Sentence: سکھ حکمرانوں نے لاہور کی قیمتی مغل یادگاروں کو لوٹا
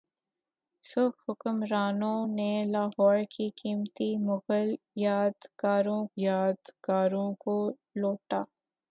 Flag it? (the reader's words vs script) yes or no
yes